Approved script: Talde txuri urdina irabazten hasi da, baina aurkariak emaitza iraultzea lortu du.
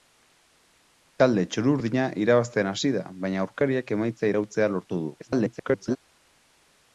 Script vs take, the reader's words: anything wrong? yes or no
yes